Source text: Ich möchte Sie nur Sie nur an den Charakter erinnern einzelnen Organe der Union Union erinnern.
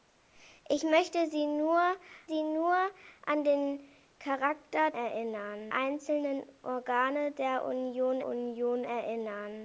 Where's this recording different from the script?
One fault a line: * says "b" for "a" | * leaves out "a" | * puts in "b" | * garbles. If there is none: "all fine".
all fine